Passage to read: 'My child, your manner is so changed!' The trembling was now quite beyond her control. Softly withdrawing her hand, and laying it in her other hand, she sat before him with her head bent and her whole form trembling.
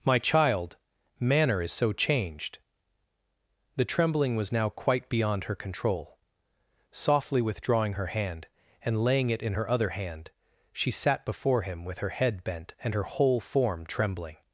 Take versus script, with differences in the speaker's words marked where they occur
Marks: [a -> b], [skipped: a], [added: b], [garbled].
'My child, [skipped: your] manner is so changed!' The trembling was now quite beyond her control. Softly withdrawing her hand, and laying it in her other hand, she sat before him with her head bent and her whole form trembling.